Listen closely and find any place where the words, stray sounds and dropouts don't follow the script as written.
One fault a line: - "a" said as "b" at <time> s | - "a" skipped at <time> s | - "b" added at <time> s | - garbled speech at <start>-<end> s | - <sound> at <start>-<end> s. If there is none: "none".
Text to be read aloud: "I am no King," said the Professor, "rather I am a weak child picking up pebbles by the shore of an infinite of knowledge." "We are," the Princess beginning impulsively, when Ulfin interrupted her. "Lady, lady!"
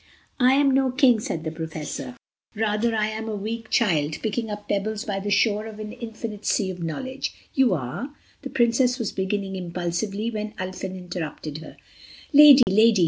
- "sea" added at 6.4 s
- "We" said as "You" at 7.5 s
- "was" added at 9.0 s
- dropout at 12.6-12.7 s